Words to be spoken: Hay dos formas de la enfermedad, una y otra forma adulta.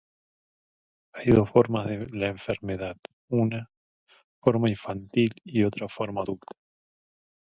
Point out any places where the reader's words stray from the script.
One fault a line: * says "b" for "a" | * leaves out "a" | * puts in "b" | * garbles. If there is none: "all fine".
* puts in "forma infantil"